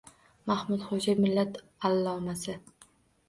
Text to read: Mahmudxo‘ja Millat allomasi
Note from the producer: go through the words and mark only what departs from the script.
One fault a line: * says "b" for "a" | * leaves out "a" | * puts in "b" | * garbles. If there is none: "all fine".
all fine